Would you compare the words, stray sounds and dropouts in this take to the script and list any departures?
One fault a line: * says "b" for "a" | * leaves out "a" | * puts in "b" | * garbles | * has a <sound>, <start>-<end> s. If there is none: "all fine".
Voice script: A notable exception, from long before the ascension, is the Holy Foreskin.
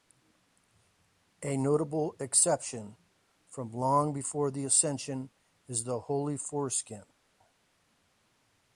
all fine